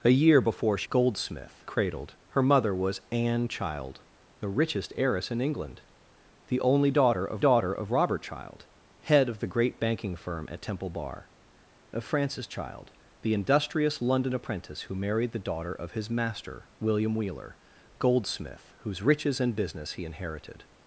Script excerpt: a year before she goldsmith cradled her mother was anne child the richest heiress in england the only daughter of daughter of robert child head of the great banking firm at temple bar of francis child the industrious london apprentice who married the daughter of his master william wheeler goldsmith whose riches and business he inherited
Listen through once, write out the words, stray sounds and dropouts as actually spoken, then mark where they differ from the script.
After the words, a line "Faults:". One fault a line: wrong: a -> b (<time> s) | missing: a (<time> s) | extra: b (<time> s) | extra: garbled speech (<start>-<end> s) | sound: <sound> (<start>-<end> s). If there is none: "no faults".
a year before she goldsmith cradled her mother was anne child the richest heiress in england the only daughter of daughter of robert child head of the great banking firm at temple bar of francis child the industrious london apprentice who married the daughter of his master william wheeler goldsmith whose riches and business he inherited
Faults:
no faults